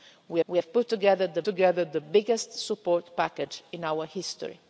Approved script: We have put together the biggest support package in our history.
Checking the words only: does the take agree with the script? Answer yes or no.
no